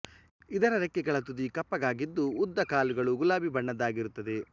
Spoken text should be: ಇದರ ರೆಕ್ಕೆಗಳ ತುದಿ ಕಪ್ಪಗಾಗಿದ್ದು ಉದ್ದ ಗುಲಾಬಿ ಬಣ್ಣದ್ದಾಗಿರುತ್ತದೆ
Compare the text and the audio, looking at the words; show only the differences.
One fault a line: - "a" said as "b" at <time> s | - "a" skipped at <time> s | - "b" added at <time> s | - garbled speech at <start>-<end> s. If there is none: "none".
- "ಕಾಲುಗಳು" added at 2.7 s